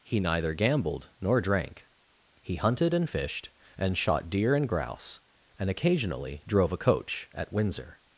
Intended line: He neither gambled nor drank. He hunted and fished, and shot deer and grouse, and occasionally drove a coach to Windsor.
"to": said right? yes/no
no